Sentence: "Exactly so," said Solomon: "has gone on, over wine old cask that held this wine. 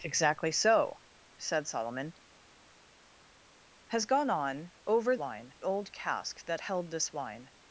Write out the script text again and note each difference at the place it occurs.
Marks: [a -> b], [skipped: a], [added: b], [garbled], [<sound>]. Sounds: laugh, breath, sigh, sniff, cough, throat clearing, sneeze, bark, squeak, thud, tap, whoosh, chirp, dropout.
"Exactly so," said Solomon: "has gone on, over wine old cask that held this wine.